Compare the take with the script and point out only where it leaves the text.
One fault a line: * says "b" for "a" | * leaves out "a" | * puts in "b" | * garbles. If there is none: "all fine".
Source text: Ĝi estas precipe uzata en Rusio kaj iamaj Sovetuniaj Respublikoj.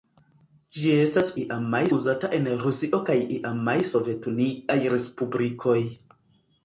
* says "iamaj" for "precipe"